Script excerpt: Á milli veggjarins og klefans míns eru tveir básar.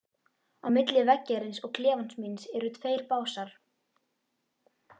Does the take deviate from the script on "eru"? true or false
false